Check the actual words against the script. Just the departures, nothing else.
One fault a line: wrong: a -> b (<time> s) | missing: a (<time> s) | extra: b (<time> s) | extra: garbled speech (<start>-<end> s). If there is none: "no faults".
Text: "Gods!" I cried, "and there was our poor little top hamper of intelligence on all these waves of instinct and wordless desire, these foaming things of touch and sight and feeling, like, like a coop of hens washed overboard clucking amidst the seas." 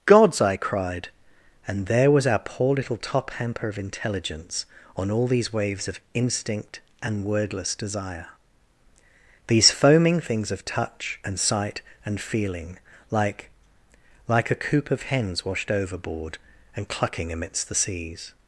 extra: and (16.8 s)